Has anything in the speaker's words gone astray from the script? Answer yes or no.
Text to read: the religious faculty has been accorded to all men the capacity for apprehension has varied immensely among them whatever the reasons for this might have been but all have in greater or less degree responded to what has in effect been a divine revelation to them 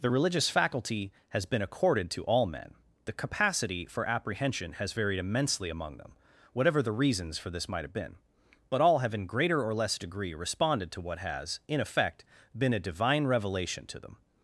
no